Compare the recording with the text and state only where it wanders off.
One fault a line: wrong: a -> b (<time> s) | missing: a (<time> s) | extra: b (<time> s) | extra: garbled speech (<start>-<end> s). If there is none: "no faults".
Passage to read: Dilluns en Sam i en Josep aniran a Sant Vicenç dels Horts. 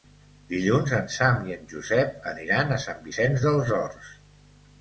no faults